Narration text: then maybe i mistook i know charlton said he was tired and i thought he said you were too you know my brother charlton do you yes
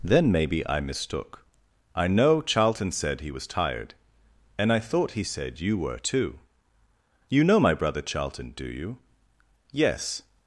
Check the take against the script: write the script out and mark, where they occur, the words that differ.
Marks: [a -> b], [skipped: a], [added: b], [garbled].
then maybe i mistook i know charlton said he was tired and i thought he said you were too you know my brother charlton do you yes